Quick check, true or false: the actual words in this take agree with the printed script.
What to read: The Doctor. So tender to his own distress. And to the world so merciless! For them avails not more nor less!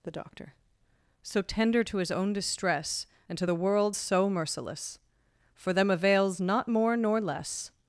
true